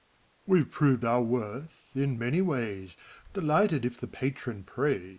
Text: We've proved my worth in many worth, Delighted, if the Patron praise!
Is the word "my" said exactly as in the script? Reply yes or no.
no